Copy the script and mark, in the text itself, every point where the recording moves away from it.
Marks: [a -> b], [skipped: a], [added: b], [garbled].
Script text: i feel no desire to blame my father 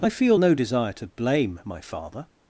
i feel no desire to blame my father